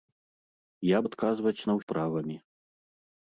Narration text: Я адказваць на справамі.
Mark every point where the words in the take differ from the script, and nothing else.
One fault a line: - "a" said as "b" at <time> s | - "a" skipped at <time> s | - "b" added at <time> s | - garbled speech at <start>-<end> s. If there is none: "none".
none